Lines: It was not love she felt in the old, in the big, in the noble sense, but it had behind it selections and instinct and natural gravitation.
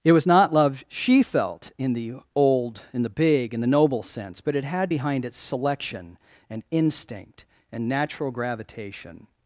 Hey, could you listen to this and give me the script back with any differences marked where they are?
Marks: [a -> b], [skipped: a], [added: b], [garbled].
It was not love she felt in the old, in the big, in the noble sense, but it had behind it [selections -> selection] and instinct and natural gravitation.